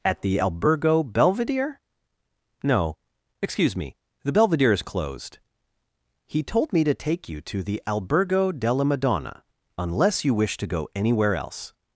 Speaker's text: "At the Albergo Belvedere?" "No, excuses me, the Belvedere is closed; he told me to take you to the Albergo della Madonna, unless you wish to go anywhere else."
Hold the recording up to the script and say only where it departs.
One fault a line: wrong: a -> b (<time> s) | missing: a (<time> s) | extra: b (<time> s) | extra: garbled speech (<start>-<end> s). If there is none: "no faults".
wrong: excuses -> excuse (3.4 s)